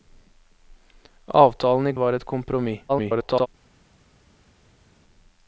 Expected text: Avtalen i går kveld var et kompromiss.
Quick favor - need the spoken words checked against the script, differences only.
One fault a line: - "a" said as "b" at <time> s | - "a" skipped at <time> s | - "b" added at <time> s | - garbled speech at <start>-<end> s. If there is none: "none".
- "går kveld" skipped at 1.9 s
- garbled speech at 2.9-3.5 s